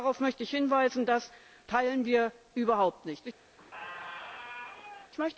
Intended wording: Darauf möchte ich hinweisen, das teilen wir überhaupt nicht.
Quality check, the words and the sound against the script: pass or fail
fail